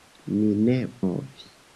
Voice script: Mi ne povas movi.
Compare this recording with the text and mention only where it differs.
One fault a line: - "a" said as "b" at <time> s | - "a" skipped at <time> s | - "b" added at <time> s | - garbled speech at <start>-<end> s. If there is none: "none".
- "povas" skipped at 0.8 s